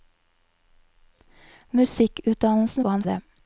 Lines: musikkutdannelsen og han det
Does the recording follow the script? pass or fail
pass